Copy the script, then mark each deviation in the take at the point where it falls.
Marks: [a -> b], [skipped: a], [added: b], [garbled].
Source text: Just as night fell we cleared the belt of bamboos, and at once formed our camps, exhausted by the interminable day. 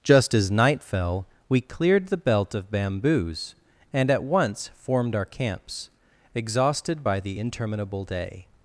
Just as night fell we cleared the belt of bamboos, and at once formed our camps, exhausted by the interminable day.